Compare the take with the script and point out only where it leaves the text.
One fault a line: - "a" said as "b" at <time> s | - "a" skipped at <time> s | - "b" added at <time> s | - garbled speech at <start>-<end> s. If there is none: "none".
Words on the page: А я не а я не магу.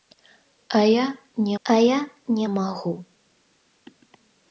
none